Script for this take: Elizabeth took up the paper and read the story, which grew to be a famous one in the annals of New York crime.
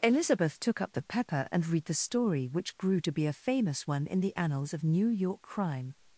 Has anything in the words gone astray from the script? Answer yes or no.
yes